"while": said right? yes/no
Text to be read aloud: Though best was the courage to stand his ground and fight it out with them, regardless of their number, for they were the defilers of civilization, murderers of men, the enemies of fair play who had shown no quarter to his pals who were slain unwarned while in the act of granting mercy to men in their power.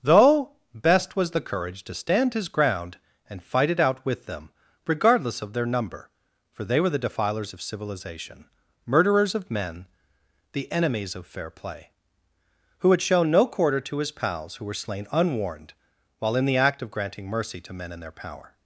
yes